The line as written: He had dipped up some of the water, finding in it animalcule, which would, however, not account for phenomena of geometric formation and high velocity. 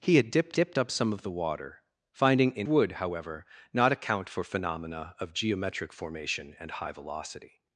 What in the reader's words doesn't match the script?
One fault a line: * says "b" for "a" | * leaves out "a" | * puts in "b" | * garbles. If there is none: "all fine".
* puts in "dipped"
* leaves out "it animalcule which"